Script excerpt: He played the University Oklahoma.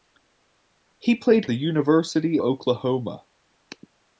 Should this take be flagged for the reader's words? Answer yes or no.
no